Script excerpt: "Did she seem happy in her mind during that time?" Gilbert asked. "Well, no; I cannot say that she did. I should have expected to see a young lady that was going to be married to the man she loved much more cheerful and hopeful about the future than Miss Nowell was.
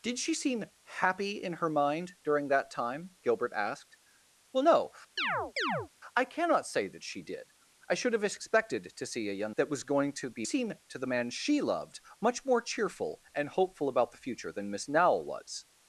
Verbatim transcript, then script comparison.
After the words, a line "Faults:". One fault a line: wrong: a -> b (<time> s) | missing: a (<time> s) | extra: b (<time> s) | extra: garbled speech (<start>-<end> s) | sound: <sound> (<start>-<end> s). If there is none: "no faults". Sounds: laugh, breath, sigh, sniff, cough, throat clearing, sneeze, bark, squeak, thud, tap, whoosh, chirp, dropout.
"Did she seem happy in her mind during that time?" Gilbert asked. "Well, no; I cannot say that she did. I should have expected to see a young that was going to be seem to the man she loved much more cheerful and hopeful about the future than Miss Nowell was.
Faults:
sound: chirp (5.2-5.9 s)
missing: lady (9.5 s)
wrong: married -> seem (10.4 s)